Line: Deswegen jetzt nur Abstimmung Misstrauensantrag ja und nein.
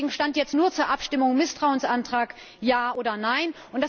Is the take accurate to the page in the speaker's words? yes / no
no